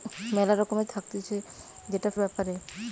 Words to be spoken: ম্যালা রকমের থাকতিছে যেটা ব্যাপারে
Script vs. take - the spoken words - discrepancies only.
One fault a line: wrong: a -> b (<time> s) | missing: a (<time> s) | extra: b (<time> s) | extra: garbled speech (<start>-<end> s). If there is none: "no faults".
no faults